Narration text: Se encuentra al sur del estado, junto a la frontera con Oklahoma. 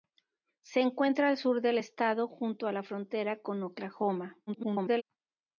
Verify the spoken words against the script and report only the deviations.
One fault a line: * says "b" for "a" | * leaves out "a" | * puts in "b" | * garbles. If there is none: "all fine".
* garbles